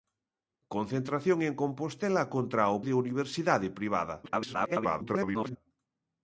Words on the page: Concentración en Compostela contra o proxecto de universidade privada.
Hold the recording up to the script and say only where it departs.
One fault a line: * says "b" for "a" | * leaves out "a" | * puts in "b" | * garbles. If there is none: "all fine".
* leaves out "proxecto"
* garbles